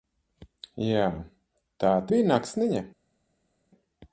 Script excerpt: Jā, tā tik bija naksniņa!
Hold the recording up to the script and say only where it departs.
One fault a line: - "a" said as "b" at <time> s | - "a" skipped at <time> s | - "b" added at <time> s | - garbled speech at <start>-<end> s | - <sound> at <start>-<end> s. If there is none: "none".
- "tik" skipped at 1.9 s